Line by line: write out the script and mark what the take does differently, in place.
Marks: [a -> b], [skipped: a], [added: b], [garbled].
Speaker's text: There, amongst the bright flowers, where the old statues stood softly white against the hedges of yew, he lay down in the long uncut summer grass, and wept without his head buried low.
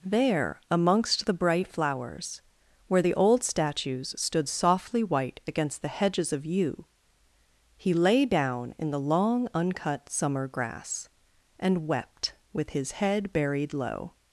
There, amongst the bright flowers, where the old statues stood softly white against the hedges of yew, he lay down in the long uncut summer grass, and wept [without -> with] his head buried low.